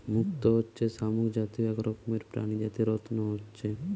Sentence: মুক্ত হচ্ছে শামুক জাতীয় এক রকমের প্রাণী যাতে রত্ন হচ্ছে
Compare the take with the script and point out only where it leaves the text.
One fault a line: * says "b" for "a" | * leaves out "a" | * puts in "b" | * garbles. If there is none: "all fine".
all fine